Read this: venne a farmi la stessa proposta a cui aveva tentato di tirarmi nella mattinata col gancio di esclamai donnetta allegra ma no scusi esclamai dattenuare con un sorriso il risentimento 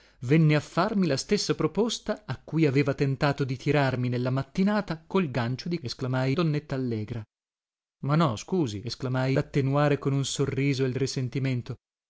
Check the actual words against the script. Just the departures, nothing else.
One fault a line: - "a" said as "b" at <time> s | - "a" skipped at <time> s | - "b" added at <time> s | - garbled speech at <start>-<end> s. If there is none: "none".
none